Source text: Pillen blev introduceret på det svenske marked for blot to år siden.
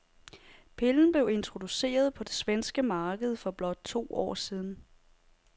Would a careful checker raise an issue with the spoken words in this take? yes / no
no